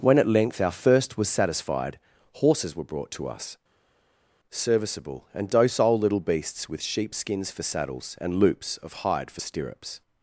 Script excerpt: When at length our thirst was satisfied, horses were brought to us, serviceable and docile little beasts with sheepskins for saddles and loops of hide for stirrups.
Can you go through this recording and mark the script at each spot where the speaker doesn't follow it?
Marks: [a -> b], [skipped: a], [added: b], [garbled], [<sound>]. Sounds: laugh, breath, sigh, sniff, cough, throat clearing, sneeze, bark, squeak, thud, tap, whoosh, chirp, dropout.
When at length our thirst was satisfied, horses were brought to us, serviceable and docile little beasts with sheepskins for saddles and loops of hide for stirrups.